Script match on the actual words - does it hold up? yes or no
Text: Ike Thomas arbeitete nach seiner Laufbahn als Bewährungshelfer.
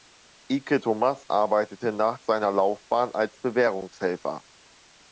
yes